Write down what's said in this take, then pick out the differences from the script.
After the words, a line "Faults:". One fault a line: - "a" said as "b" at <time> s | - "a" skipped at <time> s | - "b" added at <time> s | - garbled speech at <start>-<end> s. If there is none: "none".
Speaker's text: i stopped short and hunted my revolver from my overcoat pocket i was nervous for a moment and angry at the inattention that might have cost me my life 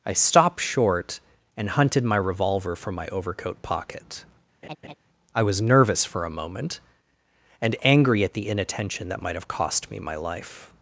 i stopped short and hunted my revolver from my overcoat pocket i was nervous for a moment and angry at the inattention that might have cost me my life
Faults:
none